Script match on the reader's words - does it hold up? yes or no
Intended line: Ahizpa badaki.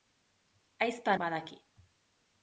yes